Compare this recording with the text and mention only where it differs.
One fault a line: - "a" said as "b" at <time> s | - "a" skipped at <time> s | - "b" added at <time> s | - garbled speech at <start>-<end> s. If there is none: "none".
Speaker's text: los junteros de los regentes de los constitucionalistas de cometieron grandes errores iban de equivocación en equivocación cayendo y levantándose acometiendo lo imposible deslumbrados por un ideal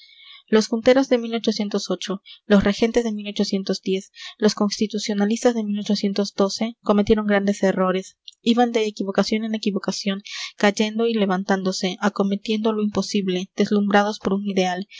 none